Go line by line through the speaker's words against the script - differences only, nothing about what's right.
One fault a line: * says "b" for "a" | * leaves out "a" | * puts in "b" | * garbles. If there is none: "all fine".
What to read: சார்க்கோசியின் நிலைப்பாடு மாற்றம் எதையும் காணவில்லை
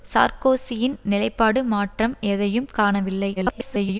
* garbles